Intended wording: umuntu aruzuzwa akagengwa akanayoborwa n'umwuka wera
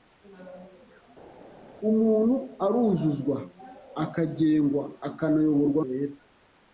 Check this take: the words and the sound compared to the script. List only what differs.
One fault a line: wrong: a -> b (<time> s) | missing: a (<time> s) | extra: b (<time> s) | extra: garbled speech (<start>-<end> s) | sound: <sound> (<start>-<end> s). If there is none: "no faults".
missing: n'umwuka (5.8 s)